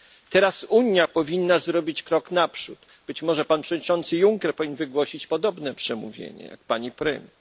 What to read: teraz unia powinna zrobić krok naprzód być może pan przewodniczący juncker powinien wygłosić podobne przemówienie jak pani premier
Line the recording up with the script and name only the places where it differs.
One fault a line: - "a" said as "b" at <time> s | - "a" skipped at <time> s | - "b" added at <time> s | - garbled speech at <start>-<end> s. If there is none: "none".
none